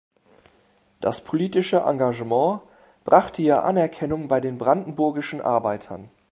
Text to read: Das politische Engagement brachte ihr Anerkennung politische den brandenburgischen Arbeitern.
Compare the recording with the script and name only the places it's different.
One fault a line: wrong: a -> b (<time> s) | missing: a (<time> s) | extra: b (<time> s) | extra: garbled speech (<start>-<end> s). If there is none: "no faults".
wrong: politische -> bei (4.3 s)